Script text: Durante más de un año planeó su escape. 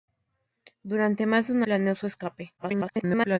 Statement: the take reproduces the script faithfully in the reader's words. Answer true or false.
false